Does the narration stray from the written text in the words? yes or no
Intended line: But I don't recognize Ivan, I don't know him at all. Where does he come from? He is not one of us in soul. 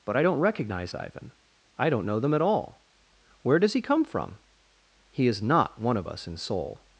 yes